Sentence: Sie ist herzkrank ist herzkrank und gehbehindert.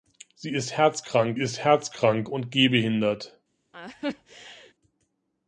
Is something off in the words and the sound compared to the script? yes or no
yes